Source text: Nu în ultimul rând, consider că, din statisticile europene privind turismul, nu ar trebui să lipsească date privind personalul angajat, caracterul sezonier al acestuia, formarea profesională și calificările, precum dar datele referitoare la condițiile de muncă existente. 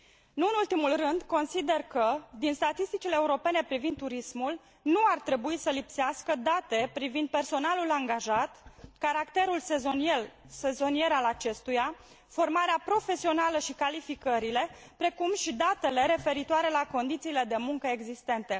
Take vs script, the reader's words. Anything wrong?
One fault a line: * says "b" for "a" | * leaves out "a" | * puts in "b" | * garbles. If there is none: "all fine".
* says "și" for "dar"